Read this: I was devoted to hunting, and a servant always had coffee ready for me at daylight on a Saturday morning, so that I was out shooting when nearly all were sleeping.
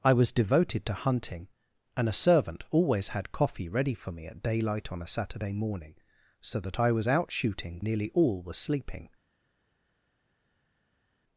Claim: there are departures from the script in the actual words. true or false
true